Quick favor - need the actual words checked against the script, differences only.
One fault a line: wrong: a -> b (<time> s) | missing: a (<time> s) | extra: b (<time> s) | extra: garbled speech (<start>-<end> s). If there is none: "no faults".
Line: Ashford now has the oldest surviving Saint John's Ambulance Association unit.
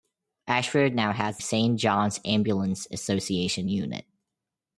missing: the oldest surviving (1.4 s)